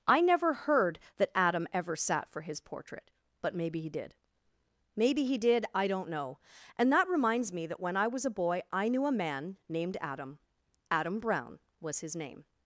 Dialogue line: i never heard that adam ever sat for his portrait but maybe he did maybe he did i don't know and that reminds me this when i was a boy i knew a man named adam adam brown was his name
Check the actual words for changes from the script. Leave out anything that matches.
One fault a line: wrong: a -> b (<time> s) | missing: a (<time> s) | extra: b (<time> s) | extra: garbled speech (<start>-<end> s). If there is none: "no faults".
wrong: this -> that (7.7 s)